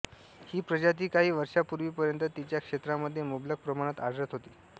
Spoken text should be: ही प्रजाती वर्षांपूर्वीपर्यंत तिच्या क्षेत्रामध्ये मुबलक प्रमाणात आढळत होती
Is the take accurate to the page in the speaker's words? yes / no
no